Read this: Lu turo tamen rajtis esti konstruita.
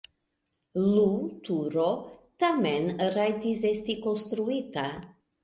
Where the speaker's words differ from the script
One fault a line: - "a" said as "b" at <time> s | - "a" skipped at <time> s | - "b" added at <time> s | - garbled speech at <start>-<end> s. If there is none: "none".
none